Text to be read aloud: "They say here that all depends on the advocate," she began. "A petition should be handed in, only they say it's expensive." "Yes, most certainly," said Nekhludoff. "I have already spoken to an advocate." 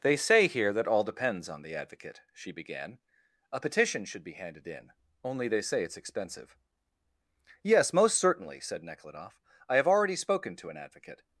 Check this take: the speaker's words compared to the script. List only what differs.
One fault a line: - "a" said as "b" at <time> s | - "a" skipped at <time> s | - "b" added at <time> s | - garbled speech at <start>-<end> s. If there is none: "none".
none